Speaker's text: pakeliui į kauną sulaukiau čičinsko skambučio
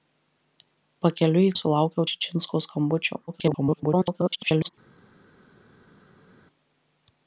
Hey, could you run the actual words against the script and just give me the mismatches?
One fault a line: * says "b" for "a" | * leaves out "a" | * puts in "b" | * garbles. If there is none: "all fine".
* leaves out "kauną"
* garbles